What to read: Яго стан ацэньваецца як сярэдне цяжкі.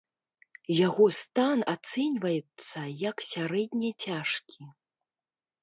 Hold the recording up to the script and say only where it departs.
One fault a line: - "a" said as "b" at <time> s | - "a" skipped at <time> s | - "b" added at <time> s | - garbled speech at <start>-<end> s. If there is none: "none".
none